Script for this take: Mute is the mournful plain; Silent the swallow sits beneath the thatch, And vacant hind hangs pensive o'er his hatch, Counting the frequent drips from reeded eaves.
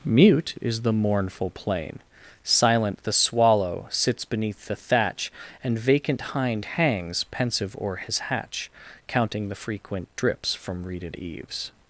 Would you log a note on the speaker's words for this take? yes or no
no